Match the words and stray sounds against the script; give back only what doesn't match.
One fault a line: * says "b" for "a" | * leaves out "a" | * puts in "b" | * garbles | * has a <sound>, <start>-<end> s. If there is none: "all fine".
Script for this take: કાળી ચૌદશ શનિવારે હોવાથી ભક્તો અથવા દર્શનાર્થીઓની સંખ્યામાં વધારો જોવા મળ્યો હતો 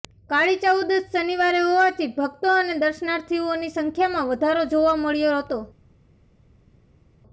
* says "અને" for "અથવા"